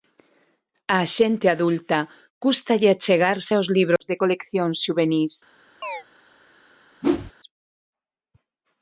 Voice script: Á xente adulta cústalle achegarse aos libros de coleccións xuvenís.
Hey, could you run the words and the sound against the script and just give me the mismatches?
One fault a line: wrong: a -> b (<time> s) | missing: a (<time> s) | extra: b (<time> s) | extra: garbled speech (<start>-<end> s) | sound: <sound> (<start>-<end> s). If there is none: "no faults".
sound: chirp (5.8-6.0 s)
sound: whoosh (7.0-7.3 s)